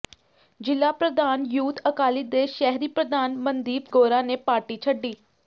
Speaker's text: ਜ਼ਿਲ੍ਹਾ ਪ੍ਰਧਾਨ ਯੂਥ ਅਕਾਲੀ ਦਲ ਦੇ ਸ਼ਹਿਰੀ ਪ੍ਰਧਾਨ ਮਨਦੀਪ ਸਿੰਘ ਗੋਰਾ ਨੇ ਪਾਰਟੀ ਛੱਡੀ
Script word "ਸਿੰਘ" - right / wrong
wrong